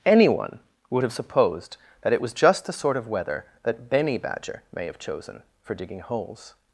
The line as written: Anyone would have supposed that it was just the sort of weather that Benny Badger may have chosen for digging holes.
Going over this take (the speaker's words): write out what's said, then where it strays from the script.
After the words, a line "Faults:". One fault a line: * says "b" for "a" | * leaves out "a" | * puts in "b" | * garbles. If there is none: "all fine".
Anyone would have supposed that it was just the sort of weather that Benny Badger may have chosen for digging holes.
Faults:
all fine